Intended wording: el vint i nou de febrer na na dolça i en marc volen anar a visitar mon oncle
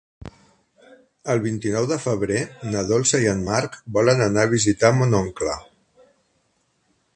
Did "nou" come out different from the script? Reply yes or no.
no